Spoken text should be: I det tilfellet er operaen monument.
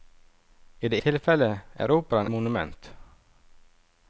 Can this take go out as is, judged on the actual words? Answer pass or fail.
pass